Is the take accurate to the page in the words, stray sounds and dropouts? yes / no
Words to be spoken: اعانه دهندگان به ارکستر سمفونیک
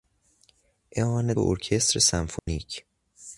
no